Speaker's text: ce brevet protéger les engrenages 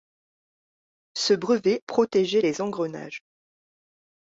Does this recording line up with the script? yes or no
yes